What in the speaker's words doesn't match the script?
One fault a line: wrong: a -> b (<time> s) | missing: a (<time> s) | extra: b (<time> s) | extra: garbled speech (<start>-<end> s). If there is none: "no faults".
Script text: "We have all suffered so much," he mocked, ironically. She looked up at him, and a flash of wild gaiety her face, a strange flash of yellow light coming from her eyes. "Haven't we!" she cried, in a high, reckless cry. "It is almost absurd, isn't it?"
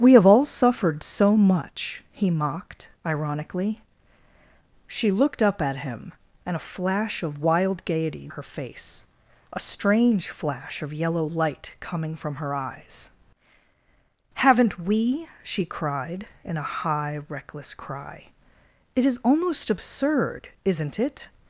no faults